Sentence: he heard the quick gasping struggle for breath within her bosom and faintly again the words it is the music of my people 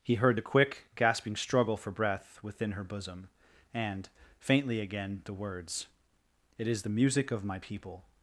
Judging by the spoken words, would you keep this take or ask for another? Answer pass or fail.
pass